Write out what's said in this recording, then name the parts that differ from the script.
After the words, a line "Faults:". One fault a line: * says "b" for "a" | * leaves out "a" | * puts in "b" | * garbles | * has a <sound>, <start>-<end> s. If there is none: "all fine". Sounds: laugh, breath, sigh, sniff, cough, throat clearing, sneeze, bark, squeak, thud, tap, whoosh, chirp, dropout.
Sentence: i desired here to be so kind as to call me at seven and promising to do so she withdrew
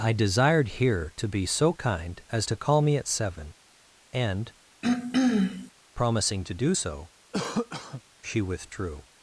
i desired here to be so kind as to call me at seven and promising to do so she withdrew
Faults:
* has a throat clearing, 4.8-5.7 s
* has a cough, 7.3-8.0 s